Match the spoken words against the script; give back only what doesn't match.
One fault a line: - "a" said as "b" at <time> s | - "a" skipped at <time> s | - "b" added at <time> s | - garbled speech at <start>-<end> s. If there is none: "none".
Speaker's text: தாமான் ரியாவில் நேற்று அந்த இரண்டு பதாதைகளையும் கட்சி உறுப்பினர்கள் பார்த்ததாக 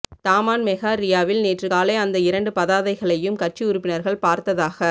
- "மெகா" added at 0.6 s
- "காலை" added at 1.6 s